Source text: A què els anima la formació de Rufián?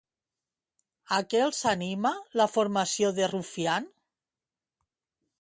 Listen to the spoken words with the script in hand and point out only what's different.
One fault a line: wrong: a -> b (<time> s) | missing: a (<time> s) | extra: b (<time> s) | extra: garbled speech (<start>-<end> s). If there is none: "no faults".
no faults